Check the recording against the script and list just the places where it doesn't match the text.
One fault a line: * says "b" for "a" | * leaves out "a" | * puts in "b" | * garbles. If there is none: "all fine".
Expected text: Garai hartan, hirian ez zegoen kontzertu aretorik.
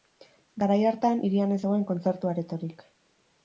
all fine